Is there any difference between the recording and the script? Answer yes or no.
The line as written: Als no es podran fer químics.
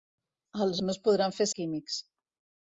no